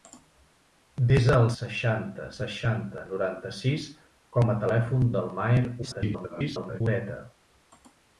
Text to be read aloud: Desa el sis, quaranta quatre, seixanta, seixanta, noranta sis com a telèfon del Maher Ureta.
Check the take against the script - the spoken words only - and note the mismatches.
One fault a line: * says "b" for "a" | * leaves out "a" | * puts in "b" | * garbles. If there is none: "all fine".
* leaves out "sis quaranta quatre"
* garbles